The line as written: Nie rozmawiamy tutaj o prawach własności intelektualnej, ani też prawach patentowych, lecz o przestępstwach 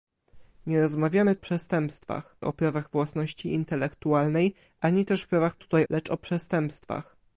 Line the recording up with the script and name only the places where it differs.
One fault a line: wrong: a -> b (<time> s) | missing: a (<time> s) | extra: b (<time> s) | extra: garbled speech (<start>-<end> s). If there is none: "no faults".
wrong: tutaj -> przestępstwach (1.4 s)
wrong: patentowych -> tutaj (5.5 s)